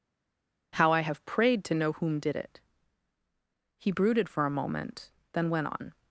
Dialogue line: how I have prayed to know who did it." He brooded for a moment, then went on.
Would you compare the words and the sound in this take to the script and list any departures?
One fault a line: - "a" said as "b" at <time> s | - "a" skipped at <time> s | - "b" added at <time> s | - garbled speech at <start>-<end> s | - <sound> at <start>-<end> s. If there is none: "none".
- "who" said as "whom" at 1.9 s